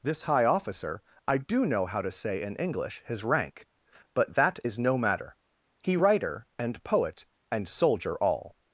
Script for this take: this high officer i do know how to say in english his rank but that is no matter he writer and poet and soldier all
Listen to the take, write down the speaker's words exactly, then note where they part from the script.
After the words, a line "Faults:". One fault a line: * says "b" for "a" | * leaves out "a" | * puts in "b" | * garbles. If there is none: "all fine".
this high officer i do know how to say in english his rank but that is no matter he writer and poet and soldier all
Faults:
all fine